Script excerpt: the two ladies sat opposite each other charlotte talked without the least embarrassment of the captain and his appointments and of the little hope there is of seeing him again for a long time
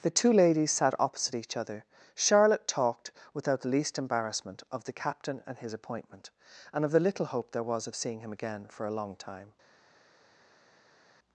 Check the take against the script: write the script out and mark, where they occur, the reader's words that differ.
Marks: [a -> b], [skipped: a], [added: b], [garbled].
the two ladies sat opposite each other charlotte talked without the least embarrassment of the captain and his [appointments -> appointment] and of the little hope there [is -> was] of seeing him again for a long time